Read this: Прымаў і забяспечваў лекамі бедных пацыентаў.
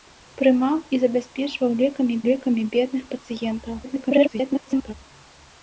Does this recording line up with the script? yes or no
no